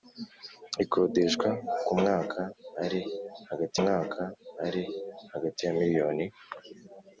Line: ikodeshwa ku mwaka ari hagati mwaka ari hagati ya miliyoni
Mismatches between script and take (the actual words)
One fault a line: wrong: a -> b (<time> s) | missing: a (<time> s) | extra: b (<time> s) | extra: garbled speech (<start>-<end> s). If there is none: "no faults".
no faults